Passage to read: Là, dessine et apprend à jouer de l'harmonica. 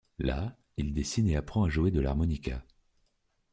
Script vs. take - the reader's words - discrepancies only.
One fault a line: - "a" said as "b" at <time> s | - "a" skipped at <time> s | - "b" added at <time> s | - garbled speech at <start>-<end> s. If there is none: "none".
- "il" added at 0.8 s